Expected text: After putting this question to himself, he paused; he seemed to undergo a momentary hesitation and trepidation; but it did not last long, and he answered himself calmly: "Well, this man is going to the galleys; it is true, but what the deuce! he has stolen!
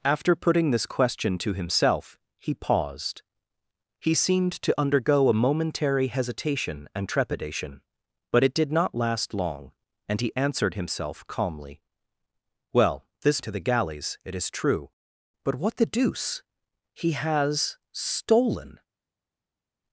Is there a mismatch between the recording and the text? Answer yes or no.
yes